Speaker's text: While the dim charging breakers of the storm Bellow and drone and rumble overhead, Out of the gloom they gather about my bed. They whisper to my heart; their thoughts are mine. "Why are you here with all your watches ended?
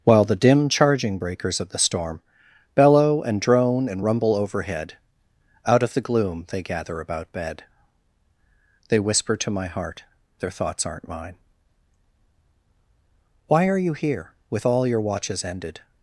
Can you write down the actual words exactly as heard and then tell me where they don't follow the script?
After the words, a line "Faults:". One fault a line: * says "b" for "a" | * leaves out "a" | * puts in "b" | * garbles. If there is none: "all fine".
While the dim charging breakers of the storm Bellow and drone and rumble overhead, Out of the gloom they gather about bed. They whisper to my heart; their thoughts aren't mine. "Why are you here with all your watches ended?
Faults:
* leaves out "my"
* says "aren't" for "are"